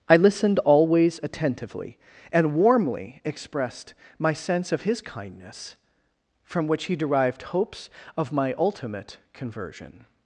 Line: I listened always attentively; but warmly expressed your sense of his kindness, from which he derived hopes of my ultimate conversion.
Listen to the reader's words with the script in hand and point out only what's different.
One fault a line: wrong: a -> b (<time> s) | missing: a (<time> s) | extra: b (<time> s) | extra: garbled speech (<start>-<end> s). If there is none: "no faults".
wrong: but -> and (2.3 s)
wrong: your -> my (4.2 s)